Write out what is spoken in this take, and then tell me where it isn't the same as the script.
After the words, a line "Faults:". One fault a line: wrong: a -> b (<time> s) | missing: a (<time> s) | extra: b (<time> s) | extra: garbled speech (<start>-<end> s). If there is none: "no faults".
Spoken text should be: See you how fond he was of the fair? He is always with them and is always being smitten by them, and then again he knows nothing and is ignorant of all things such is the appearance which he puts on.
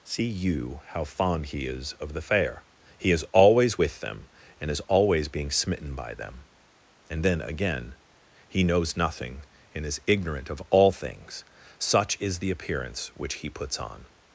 See you how fond he is of the fair? He is always with them and is always being smitten by them, and then again he knows nothing and is ignorant of all things such is the appearance which he puts on.
Faults:
wrong: was -> is (1.6 s)